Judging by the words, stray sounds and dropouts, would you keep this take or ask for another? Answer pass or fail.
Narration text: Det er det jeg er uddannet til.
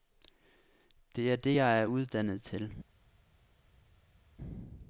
pass